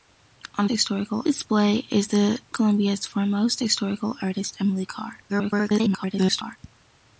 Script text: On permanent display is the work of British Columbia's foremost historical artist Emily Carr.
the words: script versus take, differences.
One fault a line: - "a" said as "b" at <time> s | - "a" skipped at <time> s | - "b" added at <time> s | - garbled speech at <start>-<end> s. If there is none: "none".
- "permanent" said as "historical" at 0.7 s
- "work of British" skipped at 2.4 s
- garbled speech at 5.3-6.6 s